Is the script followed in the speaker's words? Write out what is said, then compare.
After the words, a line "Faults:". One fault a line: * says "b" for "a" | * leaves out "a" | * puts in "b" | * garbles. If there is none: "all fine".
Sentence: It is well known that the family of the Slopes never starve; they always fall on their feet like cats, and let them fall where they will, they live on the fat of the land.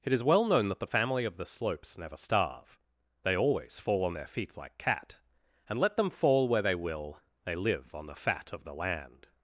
It is well known that the family of the Slopes never starve; they always fall on their feet like cat, and let them fall where they will, they live on the fat of the land.
Faults:
* says "cat" for "cats"